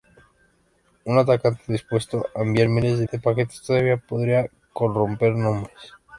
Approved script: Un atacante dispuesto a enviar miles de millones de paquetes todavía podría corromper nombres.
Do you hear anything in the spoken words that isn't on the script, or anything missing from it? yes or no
yes